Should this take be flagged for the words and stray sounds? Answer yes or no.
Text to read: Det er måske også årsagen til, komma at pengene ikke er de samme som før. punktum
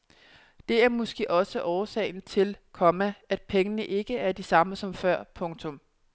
no